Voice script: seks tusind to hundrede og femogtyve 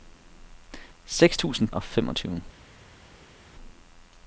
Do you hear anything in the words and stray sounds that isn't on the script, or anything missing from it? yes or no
yes